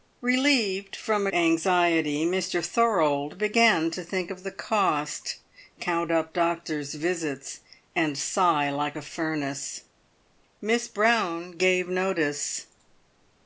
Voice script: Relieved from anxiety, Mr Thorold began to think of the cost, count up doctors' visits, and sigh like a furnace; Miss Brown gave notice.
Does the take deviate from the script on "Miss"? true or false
false